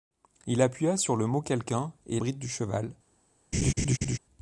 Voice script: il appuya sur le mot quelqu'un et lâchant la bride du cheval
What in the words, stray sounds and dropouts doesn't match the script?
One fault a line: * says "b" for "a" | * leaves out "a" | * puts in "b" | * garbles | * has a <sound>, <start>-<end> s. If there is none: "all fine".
* leaves out "lâchant la"
* has a laugh, 3.5-4.2 s